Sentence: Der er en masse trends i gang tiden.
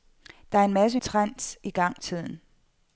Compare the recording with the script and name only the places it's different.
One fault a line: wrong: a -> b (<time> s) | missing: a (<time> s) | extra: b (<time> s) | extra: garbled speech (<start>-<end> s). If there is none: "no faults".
no faults